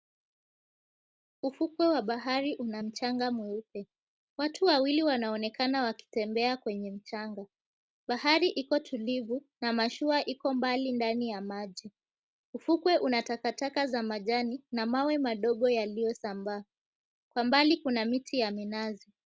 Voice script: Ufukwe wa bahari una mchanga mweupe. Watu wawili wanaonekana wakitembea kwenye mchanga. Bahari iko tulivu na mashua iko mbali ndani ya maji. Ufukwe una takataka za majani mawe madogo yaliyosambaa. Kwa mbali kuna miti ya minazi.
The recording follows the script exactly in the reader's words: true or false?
false